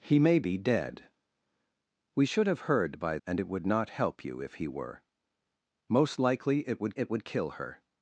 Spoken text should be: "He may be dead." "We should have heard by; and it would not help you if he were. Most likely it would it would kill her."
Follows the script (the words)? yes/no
yes